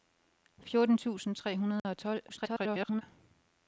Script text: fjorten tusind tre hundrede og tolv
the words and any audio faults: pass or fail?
fail